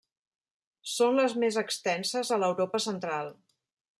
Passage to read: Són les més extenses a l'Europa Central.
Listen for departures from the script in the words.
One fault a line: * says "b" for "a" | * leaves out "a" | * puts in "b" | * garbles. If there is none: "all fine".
all fine